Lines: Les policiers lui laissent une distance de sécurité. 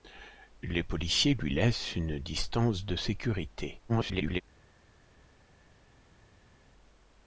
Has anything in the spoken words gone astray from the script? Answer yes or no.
yes